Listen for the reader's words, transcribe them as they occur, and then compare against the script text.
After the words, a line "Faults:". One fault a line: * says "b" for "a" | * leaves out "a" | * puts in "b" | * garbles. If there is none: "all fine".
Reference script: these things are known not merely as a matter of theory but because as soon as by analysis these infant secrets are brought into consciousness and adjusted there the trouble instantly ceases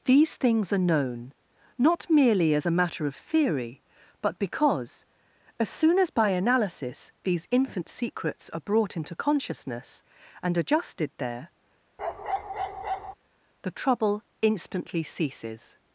these things are known not merely as a matter of theory but because as soon as by analysis these infant secrets are brought into consciousness and adjusted there the trouble instantly ceases
Faults:
all fine